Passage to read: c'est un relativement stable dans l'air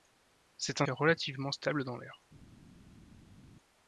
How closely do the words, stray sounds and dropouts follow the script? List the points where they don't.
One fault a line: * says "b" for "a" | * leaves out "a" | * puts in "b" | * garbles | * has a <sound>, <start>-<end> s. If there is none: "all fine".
all fine